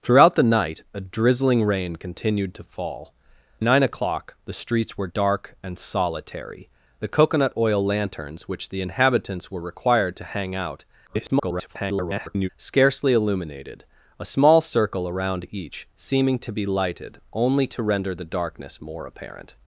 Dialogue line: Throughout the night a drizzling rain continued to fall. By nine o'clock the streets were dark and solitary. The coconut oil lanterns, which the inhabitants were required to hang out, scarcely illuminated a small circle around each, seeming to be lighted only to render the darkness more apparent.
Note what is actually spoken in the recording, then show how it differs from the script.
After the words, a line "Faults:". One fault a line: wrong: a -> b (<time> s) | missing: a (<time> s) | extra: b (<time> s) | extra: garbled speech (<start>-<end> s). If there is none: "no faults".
Throughout the night a drizzling rain continued to fall. Nine o'clock the streets were dark and solitary. The coconut oil lanterns, which the inhabitants were required to hang out, [garbled] scarcely illuminated a small circle around each, seeming to be lighted only to render the darkness more apparent.
Faults:
missing: By (3.1 s)
extra: garbled speech (11.1-12.5 s)